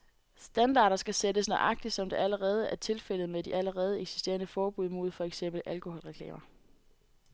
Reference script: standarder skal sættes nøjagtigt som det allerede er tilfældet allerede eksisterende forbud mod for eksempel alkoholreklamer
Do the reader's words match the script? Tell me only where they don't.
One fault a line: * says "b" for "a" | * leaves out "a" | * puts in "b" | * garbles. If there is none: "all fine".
* puts in "med de"